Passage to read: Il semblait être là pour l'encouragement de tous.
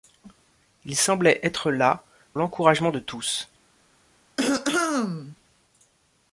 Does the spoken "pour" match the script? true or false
false